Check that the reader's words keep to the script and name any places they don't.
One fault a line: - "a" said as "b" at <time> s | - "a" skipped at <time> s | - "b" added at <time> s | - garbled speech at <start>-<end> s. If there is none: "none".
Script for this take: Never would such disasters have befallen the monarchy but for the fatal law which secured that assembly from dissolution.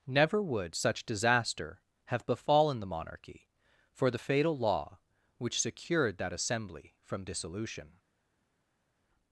- "disasters" said as "disaster" at 1.1 s
- "but" skipped at 3.5 s